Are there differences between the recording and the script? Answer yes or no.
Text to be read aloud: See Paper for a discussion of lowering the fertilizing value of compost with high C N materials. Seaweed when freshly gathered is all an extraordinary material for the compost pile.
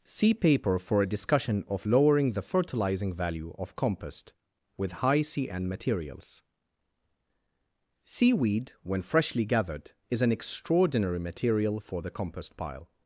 yes